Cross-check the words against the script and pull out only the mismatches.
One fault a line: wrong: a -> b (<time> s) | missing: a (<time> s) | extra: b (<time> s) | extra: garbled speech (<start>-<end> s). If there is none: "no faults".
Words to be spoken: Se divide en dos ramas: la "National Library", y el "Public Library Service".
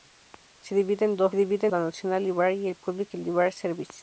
wrong: ramas -> divide (1.3 s)